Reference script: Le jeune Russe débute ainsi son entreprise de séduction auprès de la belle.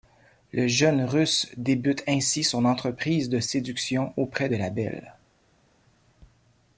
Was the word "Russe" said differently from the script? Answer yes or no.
no